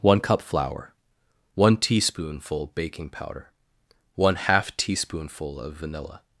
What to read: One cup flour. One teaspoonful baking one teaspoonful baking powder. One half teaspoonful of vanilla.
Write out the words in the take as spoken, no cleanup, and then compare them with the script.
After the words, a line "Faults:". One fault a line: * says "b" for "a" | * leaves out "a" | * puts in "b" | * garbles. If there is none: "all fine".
One cup flour. One teaspoonful baking powder. One half teaspoonful of vanilla.
Faults:
* leaves out "one teaspoonful baking"